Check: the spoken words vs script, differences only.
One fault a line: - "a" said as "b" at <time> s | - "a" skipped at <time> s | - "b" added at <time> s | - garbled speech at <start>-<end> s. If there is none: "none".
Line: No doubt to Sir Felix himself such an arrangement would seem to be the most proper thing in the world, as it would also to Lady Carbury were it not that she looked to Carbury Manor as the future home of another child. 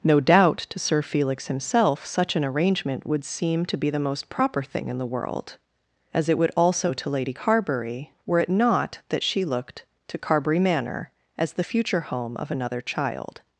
none